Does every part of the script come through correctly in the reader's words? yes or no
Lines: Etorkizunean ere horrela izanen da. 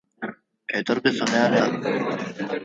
no